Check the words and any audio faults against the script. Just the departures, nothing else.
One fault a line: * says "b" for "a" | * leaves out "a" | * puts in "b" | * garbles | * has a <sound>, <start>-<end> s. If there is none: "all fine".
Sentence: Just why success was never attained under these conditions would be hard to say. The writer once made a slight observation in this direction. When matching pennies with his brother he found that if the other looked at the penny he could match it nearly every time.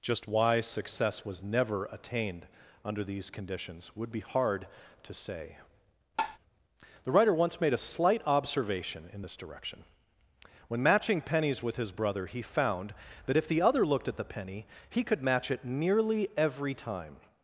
* has a tap, 6.2-6.4 s